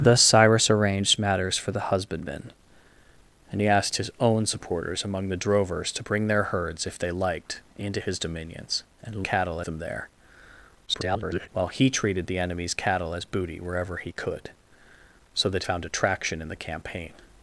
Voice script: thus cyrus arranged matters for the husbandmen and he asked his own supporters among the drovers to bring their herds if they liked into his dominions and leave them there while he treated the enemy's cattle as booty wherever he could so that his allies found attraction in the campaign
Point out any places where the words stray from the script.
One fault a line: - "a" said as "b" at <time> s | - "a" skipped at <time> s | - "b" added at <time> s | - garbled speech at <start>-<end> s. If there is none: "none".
- "leave" said as "cattle" at 9.2 s
- garbled speech at 10.9-11.5 s
- "his allies" skipped at 15.6 s